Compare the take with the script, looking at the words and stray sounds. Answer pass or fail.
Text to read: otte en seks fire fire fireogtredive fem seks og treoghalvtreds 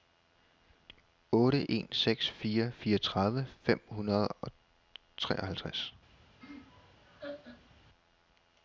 fail